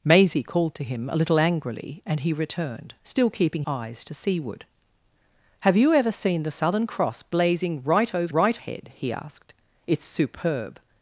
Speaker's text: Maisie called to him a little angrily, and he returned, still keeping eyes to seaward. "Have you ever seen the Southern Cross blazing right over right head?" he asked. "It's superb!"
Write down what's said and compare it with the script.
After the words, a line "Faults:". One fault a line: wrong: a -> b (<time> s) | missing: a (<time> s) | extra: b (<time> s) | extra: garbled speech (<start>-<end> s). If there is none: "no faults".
Maisie called to him a little angrily, and he returned, still keeping eyes to seaward. "Have you ever seen the Southern Cross blazing right over right head?" he asked. "It's superb!"
Faults:
no faults